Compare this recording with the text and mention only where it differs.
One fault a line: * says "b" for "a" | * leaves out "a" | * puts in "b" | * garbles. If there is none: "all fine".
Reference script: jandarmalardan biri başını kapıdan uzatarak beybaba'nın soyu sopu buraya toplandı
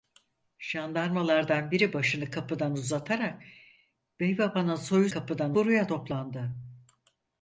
* says "kapıdan" for "sopu"